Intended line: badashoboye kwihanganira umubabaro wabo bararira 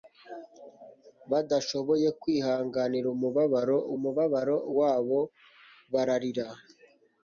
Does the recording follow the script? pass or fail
fail